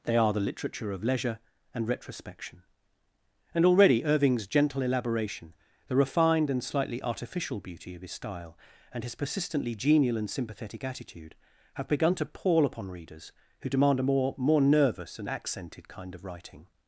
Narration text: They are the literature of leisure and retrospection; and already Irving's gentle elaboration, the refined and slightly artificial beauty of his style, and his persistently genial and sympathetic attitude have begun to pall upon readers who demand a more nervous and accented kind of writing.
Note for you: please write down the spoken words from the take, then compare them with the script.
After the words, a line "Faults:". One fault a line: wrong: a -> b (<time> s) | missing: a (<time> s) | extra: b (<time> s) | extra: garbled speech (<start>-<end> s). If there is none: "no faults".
They are the literature of leisure and retrospection; and already Irving's gentle elaboration, the refined and slightly artificial beauty of his style, and his persistently genial and sympathetic attitude have begun to pall upon readers who demand a more more nervous and accented kind of writing.
Faults:
extra: more (14.4 s)